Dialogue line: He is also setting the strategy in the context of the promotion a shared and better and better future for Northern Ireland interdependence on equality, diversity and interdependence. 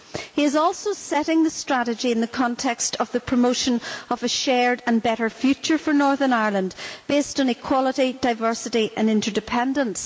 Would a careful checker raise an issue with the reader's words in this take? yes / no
yes